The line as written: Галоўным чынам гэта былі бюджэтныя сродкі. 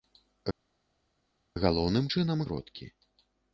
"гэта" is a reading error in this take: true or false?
true